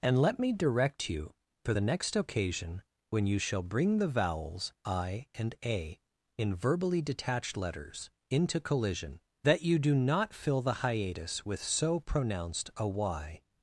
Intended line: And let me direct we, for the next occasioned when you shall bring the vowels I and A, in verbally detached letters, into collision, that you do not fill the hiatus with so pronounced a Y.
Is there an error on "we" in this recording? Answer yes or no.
yes